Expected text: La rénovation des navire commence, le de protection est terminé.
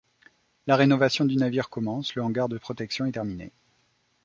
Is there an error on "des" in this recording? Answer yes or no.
yes